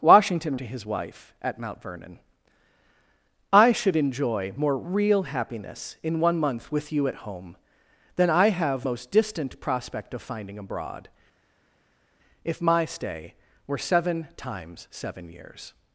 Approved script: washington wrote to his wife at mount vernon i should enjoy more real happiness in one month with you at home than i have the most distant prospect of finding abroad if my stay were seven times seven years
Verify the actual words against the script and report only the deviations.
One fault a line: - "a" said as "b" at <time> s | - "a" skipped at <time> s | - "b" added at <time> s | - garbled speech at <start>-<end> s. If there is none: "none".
- "wrote" skipped at 0.6 s
- "the" skipped at 8.8 s